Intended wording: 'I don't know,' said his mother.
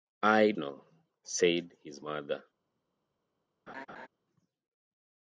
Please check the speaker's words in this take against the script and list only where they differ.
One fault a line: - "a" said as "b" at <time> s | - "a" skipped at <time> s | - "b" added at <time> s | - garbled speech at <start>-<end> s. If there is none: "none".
- "don't" skipped at 0.5 s